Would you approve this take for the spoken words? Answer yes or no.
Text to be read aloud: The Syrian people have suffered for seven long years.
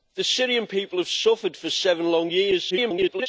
no